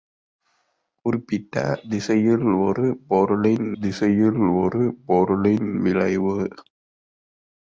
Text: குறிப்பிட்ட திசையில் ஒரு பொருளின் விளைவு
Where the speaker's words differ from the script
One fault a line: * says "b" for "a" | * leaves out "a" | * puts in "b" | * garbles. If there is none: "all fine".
* puts in "திசையில் ஒரு பொருளின்"